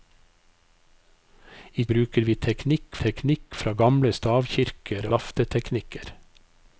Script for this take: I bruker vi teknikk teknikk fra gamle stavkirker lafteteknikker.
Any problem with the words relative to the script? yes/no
no